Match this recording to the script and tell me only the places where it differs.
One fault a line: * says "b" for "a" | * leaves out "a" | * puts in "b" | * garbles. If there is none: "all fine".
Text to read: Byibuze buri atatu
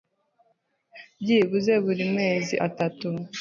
* puts in "mezi"